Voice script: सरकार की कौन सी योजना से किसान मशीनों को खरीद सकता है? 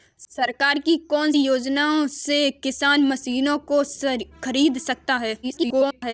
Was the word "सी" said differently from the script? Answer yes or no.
yes